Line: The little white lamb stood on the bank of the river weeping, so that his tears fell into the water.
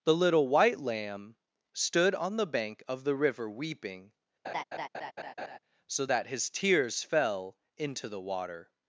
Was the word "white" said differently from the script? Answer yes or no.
no